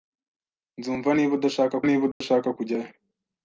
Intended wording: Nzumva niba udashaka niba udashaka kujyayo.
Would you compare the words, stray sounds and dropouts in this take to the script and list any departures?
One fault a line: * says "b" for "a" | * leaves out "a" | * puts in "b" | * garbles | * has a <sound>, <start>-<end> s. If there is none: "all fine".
* has a dropout, 2.1-2.2 s